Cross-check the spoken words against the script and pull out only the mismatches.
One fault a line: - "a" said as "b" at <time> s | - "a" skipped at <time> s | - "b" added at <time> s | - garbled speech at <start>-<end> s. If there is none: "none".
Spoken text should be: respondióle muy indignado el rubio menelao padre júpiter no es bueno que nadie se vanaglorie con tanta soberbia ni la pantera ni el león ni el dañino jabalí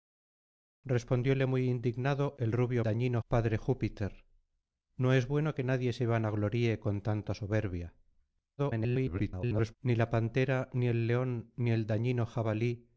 - "menelao" said as "dañino" at 2.8 s
- garbled speech at 8.6-9.7 s